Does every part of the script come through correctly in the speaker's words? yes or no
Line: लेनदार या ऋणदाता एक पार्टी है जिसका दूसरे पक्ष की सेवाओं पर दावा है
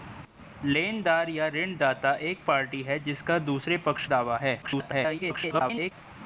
no